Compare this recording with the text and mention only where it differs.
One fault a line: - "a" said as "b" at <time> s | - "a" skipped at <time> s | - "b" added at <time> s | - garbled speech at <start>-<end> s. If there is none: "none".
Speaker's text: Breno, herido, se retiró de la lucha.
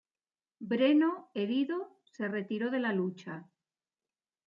none